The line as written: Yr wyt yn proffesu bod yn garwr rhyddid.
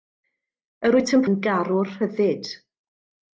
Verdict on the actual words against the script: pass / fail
fail